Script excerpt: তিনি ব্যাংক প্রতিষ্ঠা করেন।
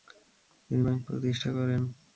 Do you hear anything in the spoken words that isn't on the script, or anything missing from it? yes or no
no